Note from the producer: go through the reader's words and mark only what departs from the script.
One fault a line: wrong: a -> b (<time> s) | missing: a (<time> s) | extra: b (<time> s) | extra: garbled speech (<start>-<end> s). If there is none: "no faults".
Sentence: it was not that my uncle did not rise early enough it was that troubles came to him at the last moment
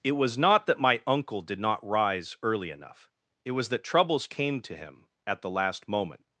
no faults